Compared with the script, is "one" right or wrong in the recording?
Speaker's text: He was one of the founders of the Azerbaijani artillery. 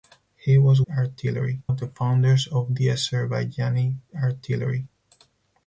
wrong